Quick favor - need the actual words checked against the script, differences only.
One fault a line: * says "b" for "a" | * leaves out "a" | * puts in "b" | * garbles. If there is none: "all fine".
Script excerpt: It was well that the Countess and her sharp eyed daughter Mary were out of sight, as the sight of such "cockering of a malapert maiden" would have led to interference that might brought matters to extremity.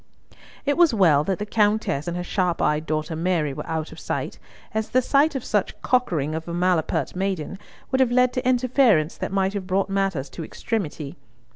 * puts in "have"